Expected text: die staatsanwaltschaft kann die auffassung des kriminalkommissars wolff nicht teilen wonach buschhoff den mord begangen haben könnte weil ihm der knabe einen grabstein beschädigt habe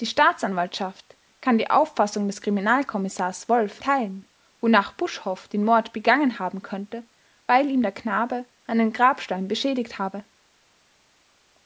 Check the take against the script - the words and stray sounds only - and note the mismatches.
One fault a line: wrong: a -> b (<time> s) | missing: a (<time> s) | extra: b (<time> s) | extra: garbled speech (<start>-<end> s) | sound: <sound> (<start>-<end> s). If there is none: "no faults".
missing: nicht (3.8 s)